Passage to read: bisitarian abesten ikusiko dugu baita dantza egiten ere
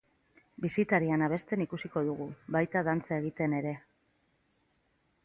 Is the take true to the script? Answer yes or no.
yes